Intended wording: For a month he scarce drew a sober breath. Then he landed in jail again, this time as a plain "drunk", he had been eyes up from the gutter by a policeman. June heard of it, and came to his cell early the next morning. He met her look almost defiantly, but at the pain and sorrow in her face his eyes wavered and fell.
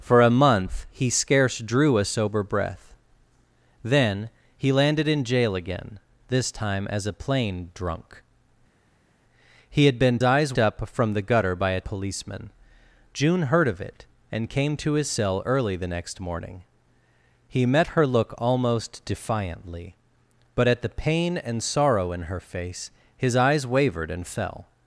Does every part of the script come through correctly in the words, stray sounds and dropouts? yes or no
yes